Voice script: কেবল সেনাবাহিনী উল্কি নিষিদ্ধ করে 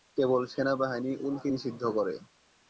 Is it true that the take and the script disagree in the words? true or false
false